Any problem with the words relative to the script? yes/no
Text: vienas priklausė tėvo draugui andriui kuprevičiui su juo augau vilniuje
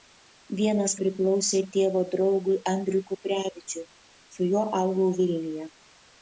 no